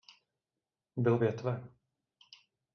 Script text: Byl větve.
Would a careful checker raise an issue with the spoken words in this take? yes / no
no